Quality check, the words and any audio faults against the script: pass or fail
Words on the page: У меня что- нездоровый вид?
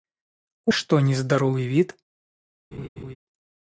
fail